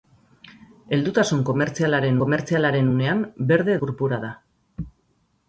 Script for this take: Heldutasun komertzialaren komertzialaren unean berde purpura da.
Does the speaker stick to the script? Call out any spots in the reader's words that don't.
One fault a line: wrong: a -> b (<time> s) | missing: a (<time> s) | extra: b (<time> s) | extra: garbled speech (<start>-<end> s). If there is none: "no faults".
no faults